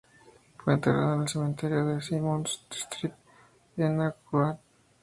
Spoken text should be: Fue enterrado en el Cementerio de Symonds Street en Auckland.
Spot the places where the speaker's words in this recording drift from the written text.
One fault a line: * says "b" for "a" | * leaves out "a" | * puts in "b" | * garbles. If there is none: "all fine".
all fine